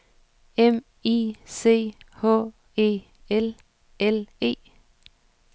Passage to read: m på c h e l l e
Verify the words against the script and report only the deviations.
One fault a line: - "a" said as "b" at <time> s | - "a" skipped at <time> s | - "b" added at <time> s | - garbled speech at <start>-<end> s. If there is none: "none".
- "på" said as "i" at 1.1 s